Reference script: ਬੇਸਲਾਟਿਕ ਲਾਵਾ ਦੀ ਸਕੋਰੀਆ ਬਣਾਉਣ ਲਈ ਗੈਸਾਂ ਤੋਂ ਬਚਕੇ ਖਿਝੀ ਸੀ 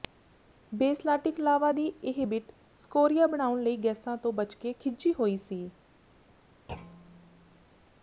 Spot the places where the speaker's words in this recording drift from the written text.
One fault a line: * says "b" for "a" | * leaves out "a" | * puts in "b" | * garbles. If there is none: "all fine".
* puts in "ਇਹ ਬਿੱਟ"
* puts in "ਹੋਈ"